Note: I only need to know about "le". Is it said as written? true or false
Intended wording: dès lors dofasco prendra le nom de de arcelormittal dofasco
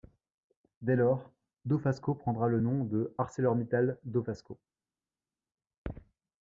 true